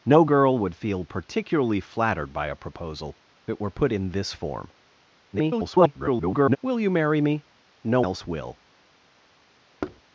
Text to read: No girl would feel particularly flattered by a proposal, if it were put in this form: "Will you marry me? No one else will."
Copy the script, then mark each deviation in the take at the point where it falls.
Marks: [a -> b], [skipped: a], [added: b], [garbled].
No girl would feel particularly flattered by a proposal, [skipped: if] it were put in this form: [garbled] "Will you marry me? No [skipped: one] else will."